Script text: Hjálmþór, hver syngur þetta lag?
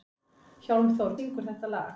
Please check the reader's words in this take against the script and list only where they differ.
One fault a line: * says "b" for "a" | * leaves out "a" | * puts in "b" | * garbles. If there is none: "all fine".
* leaves out "hver"